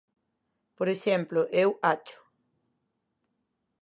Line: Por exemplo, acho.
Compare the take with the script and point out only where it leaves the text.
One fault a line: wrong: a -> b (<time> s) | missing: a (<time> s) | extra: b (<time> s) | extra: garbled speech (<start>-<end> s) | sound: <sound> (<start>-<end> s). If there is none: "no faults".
extra: eu (1.5 s)